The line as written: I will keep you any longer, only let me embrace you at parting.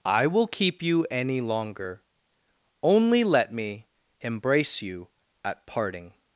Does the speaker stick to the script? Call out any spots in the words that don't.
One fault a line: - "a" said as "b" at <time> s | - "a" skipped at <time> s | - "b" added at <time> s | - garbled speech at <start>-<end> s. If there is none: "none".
none